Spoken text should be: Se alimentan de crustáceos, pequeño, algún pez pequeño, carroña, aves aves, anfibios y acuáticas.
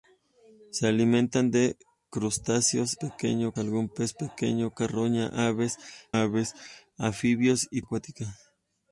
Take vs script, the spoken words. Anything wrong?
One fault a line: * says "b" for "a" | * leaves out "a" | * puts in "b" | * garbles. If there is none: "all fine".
all fine